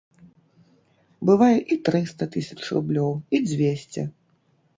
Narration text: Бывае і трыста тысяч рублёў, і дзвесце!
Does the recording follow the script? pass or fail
pass